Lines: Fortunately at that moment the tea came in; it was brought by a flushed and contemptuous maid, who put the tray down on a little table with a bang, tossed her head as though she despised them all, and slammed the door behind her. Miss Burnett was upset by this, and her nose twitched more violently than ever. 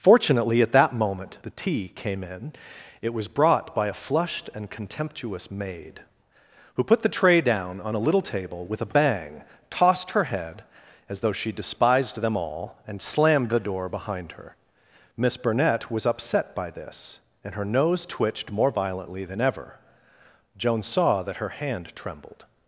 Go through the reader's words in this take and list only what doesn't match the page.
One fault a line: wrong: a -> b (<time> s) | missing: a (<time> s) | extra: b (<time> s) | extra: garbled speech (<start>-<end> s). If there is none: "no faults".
extra: Joan saw that her hand trembled (20.6 s)